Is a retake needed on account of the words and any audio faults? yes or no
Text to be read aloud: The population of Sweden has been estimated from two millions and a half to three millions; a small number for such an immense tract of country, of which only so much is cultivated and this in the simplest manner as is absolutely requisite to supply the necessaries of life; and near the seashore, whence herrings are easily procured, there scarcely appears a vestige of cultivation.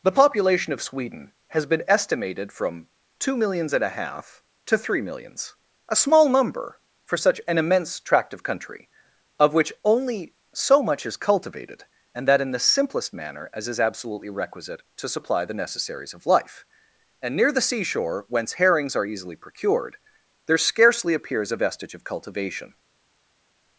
yes